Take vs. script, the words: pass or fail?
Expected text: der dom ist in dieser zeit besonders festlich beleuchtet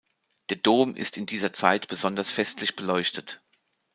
pass